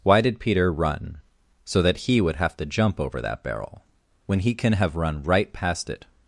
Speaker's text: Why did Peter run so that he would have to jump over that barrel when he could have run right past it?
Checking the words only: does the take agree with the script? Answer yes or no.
no